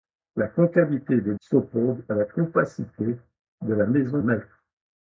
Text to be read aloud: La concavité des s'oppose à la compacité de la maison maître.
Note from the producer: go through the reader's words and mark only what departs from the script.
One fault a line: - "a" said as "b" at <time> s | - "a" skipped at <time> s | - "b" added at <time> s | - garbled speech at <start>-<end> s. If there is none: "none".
none